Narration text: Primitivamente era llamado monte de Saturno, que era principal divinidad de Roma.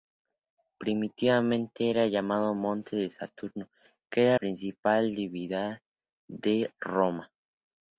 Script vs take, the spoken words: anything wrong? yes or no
no